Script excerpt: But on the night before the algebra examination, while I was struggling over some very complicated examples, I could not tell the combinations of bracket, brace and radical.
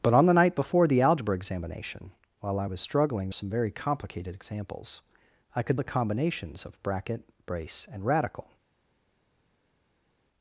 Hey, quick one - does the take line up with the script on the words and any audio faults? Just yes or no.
no